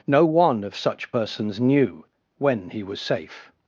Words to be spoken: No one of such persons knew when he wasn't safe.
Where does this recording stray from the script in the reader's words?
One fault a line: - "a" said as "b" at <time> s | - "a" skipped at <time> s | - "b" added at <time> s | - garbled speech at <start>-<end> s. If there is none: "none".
- "wasn't" said as "was" at 2.8 s